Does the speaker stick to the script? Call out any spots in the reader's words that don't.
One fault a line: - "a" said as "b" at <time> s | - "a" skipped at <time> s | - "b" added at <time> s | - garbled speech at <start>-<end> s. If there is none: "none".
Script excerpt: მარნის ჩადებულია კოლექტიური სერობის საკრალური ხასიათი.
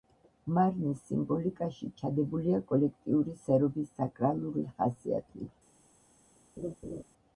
- "სიმბოლიკაში" added at 1.1 s